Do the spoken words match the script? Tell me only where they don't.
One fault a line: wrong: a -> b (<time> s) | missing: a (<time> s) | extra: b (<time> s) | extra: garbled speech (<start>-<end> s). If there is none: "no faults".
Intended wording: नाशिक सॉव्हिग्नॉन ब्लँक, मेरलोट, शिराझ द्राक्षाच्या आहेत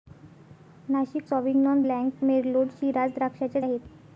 no faults